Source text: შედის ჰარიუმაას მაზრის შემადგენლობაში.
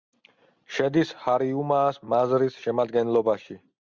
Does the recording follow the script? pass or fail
pass